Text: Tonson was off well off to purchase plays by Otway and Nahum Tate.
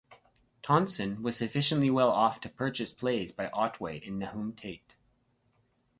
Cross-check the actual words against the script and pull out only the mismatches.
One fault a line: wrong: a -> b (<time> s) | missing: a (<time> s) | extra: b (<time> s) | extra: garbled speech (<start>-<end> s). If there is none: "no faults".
wrong: off -> sufficiently (1.4 s)